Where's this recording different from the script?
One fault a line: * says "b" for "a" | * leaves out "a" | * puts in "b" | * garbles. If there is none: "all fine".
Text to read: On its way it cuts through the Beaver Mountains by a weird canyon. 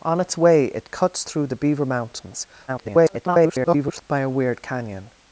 * garbles